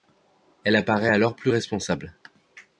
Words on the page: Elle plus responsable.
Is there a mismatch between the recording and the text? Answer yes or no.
yes